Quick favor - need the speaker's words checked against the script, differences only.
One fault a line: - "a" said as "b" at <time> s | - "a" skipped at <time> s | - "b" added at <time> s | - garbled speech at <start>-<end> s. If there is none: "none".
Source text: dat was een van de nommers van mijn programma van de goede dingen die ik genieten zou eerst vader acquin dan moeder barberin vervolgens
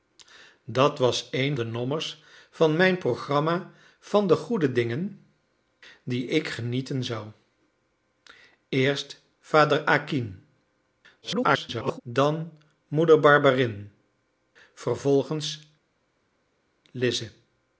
- "van" skipped at 1.6 s
- garbled speech at 11.2-12.0 s